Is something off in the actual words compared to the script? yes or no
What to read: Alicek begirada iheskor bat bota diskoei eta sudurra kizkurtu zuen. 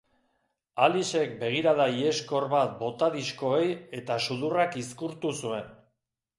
no